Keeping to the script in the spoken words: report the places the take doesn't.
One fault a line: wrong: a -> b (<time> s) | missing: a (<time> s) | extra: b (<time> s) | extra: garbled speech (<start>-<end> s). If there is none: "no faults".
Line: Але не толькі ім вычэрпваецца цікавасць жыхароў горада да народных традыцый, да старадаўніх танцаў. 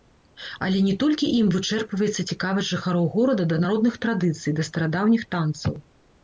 no faults